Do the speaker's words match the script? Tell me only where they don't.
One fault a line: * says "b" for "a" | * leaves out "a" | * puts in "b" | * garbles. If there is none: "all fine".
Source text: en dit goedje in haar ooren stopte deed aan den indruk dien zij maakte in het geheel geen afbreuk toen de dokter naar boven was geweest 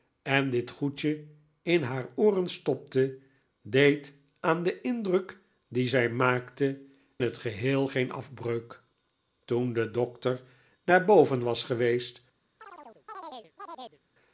* leaves out "in"